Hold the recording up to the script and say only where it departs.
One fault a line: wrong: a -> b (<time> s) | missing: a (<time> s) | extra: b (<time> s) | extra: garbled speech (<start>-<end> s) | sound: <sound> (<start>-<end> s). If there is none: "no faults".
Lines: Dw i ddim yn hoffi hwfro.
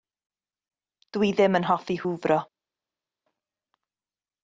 no faults